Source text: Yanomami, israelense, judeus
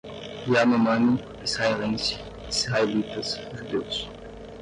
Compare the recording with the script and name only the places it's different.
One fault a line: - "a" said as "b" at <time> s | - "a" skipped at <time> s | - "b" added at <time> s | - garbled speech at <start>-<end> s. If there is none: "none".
- "israelitas" added at 2.5 s